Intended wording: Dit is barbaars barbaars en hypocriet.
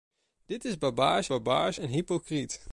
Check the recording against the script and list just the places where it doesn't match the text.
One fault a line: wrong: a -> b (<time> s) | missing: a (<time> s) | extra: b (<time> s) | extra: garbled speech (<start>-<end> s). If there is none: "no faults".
no faults